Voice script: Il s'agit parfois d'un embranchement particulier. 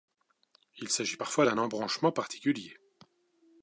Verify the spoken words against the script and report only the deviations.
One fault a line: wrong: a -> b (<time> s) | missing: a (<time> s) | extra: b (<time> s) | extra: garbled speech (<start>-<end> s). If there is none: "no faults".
no faults